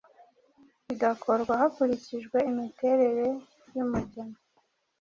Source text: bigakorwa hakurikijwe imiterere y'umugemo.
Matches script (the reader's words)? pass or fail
pass